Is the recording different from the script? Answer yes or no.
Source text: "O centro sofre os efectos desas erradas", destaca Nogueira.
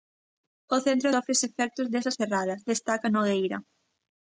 no